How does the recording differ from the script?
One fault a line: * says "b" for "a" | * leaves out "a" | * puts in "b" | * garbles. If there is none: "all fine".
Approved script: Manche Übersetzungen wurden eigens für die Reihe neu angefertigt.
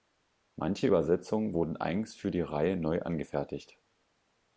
all fine